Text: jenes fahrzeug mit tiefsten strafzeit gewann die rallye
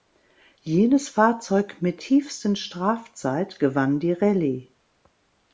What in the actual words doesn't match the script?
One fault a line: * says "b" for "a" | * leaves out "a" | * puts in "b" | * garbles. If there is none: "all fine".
all fine